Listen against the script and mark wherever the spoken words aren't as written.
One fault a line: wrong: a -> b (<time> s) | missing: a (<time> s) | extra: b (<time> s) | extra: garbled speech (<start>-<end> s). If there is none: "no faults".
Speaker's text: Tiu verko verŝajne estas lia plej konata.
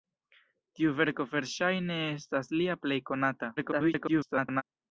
extra: garbled speech (3.6-4.6 s)